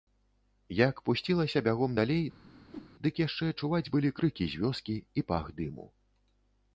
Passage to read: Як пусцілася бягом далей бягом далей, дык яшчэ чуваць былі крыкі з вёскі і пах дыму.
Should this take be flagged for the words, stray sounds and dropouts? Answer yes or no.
yes